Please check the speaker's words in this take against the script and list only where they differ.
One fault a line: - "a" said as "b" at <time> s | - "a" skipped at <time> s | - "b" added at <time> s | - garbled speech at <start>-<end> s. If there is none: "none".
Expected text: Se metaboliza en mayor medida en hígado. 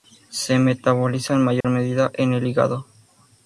- "el" added at 2.3 s